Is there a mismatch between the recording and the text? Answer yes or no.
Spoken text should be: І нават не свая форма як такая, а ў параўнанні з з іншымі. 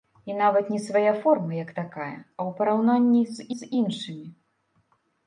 no